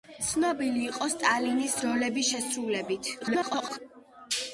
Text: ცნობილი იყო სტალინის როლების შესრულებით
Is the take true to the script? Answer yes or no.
no